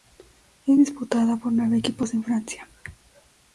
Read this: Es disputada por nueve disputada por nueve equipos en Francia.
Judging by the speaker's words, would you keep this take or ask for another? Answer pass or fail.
fail